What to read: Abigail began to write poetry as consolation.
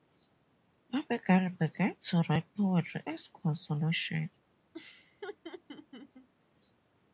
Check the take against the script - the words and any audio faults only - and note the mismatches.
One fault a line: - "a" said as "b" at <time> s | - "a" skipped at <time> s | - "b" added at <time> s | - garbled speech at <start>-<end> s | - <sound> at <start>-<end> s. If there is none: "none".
- laugh at 4.7-6.3 s